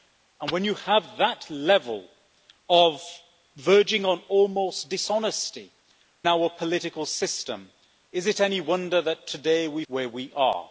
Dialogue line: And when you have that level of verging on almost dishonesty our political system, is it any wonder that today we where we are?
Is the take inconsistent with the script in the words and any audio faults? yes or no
no